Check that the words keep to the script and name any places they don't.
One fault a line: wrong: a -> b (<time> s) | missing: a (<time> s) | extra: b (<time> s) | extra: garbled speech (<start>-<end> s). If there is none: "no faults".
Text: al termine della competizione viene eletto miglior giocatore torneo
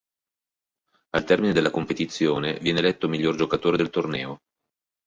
extra: del (3.8 s)